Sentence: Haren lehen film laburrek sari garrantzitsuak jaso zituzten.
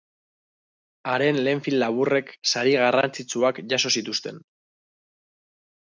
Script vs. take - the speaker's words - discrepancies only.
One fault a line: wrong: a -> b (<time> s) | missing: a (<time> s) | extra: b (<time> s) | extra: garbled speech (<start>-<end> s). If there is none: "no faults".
no faults